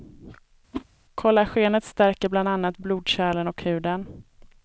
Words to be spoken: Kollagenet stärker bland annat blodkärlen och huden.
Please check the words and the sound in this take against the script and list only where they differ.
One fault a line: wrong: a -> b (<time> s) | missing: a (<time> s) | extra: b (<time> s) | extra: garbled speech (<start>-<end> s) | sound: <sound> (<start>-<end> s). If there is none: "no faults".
sound: whoosh (0.7-0.8 s)